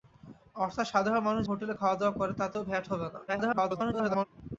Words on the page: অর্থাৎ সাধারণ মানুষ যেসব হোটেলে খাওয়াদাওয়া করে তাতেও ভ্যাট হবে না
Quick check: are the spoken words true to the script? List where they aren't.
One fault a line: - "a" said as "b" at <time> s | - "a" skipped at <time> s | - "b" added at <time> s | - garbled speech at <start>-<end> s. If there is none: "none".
- "যেসব" skipped at 1.4 s
- garbled speech at 3.3-4.3 s